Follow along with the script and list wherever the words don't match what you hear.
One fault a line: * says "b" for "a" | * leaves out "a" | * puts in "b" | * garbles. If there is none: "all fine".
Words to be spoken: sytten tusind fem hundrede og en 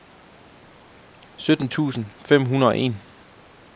all fine